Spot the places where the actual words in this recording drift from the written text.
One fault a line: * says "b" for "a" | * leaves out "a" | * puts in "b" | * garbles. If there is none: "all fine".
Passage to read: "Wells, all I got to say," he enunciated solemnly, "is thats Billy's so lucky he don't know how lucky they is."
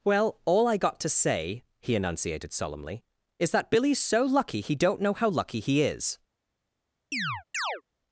* says "Well" for "Wells"
* says "that" for "thats"
* says "he" for "they"